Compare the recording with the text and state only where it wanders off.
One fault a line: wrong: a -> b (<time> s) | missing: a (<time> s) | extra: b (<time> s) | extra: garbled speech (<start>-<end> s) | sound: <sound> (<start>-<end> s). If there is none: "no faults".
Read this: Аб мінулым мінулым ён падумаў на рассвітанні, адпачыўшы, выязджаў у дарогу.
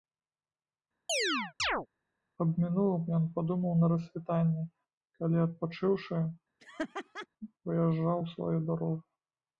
sound: chirp (1.1-1.9 s)
missing: мінулым (3.0 s)
extra: калі (5.2 s)
sound: laugh (6.6-7.3 s)
extra: сваю (8.3 s)